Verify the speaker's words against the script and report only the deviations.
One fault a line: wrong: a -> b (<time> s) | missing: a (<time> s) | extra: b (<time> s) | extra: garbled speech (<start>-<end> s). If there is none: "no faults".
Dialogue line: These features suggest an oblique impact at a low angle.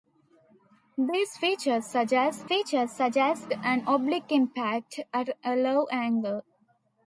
extra: features suggest (2.5 s)